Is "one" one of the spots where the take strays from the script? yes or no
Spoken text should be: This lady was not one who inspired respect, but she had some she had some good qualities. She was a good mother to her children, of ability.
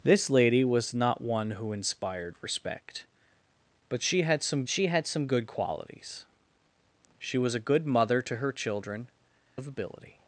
no